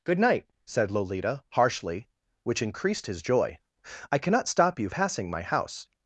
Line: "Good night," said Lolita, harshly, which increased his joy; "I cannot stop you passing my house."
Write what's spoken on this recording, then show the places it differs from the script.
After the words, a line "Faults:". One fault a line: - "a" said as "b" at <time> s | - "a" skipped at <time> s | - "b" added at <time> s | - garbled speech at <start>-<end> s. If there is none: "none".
"Good night," said Lolita, harshly, which increased his joy; "I cannot stop you passing my house."
Faults:
none